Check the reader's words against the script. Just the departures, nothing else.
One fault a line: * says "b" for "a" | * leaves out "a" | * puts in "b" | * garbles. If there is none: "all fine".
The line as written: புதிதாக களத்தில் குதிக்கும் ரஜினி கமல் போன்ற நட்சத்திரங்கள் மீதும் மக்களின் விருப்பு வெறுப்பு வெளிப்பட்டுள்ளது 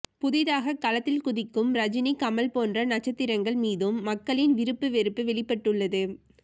all fine